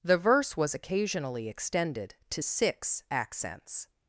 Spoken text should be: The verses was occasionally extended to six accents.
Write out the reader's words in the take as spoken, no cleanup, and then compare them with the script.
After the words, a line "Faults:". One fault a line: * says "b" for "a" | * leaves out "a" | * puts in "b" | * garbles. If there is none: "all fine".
The verse was occasionally extended to six accents.
Faults:
* says "verse" for "verses"